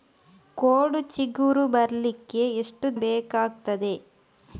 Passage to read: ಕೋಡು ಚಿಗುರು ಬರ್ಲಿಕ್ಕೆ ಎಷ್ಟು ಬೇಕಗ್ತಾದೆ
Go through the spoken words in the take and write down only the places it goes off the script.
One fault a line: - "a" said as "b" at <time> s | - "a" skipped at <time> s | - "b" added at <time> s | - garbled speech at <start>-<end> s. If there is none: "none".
none